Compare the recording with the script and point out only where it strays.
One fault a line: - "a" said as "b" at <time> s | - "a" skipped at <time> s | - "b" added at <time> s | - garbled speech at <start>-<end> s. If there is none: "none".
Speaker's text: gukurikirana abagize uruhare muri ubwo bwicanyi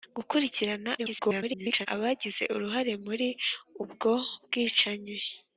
- garbled speech at 1.0-1.9 s